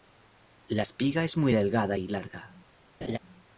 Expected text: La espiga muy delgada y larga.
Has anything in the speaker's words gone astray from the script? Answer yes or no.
yes